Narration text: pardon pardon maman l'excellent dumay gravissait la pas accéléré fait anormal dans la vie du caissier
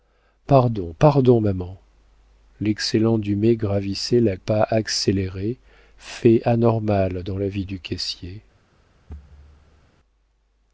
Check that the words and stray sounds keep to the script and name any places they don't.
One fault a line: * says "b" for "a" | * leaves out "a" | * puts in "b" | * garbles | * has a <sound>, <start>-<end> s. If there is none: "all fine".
* has a thud, 9.1-9.9 s